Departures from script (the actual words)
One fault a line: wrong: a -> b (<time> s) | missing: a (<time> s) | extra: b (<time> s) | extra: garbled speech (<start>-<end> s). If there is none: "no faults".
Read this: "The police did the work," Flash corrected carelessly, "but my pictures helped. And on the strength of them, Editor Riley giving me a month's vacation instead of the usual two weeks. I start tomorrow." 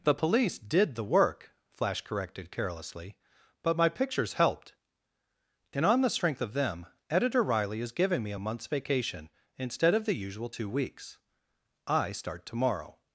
extra: is (7.8 s)